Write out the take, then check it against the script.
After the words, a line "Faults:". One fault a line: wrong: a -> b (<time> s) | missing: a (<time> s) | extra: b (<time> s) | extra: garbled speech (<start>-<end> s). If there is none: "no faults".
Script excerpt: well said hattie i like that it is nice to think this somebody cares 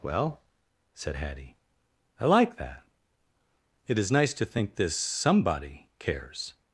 well said hattie i like that it is nice to think this somebody cares
Faults:
no faults